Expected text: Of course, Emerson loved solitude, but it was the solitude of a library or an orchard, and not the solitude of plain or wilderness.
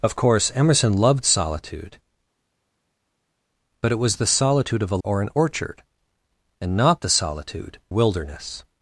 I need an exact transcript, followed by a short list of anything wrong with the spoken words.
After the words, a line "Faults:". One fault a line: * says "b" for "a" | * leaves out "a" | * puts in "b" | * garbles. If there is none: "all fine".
Of course, Emerson loved solitude, but it was the solitude of a or an orchard, and not the solitude wilderness.
Faults:
* leaves out "library"
* leaves out "of plain or"